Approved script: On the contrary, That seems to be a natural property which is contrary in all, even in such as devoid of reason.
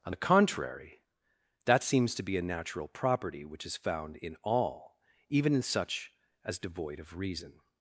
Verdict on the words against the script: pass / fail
fail